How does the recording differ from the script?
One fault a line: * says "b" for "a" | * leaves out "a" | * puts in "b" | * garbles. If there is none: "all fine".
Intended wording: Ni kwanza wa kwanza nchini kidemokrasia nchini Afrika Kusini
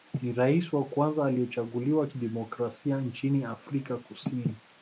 * says "rais" for "kwanza"
* says "aliyechaguliwa" for "nchini"